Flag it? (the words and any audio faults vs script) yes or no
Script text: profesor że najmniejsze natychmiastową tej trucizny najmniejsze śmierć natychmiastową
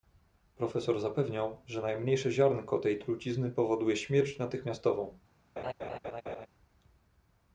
yes